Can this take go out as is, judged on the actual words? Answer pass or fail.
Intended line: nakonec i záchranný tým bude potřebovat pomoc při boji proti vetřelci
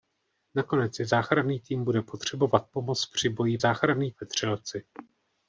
fail